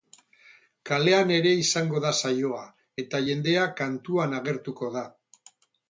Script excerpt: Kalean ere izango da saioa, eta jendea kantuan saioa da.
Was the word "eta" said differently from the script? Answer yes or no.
no